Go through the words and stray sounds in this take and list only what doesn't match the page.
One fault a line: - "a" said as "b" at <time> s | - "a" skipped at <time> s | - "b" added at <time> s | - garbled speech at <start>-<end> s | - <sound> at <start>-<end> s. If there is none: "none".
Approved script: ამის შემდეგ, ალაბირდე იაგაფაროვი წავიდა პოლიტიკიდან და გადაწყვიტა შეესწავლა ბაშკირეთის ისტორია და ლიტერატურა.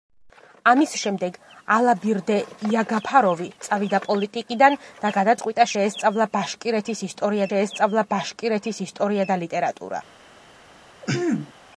- "შეესწავლა ბაშკირეთის ისტორია" added at 7.5 s
- throat clearing at 11.0-11.5 s